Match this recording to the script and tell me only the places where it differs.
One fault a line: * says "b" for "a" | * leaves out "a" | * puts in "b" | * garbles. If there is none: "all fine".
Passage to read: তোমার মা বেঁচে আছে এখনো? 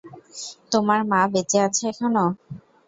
all fine